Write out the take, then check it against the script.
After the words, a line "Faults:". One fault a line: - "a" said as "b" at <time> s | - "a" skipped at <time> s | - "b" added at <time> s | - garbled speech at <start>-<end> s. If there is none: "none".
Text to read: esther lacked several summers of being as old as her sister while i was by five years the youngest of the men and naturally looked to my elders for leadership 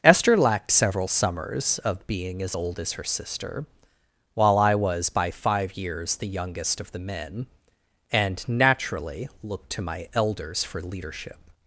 esther lacked several summers of being as old as her sister while i was by five years the youngest of the men and naturally looked to my elders for leadership
Faults:
none